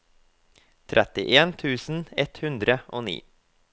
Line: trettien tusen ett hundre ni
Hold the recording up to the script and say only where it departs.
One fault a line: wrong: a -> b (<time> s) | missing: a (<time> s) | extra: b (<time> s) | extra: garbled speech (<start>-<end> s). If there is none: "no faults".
extra: og (2.9 s)